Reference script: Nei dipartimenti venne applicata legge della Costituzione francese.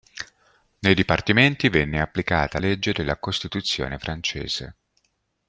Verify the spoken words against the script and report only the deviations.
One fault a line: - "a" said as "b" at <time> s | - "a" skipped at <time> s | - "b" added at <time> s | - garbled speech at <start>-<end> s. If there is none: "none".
none